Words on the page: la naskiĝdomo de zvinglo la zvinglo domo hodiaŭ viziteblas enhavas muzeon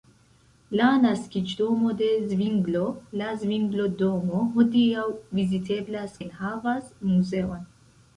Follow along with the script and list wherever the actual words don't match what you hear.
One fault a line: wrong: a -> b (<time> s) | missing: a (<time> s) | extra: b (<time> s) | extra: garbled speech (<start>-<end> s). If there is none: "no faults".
no faults